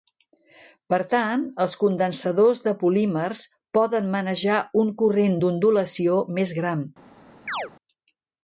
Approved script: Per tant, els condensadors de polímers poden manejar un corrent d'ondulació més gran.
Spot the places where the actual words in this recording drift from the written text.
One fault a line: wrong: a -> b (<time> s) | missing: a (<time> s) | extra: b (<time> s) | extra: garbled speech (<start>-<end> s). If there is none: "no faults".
no faults